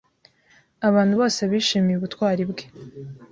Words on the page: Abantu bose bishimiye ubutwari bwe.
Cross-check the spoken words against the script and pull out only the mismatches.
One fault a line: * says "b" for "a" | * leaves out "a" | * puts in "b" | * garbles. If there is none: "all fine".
all fine